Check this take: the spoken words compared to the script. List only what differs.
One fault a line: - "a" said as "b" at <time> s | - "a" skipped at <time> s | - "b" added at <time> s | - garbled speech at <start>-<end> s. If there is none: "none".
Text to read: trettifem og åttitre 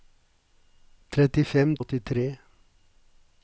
none